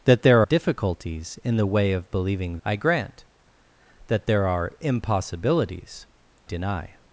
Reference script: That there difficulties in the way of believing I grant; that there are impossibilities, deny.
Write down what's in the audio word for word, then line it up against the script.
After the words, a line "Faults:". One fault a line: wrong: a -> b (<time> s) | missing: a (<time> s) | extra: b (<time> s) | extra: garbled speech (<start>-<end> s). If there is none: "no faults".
That there difficulties in the way of believing I grant; that there are impossibilities, deny.
Faults:
no faults